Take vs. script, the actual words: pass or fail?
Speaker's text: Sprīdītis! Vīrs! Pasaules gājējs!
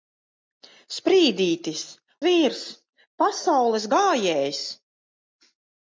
pass